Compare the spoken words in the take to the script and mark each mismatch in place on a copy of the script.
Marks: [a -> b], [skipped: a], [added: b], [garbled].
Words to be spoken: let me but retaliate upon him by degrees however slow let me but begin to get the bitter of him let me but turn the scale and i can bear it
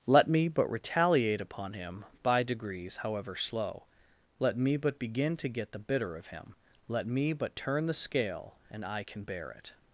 let me but retaliate upon him by degrees however slow let me but begin to get the bitter of him let me but turn the scale and i can bear it